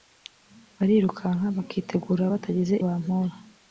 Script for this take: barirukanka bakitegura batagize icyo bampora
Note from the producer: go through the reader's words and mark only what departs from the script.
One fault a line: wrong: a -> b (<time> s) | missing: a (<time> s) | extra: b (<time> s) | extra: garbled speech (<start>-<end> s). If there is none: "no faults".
missing: icyo (2.7 s)